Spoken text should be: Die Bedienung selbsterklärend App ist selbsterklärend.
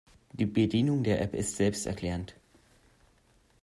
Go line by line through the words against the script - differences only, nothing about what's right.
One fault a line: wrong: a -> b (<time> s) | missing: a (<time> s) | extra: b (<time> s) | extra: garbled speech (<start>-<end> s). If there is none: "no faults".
wrong: selbsterklärend -> der (1.0 s)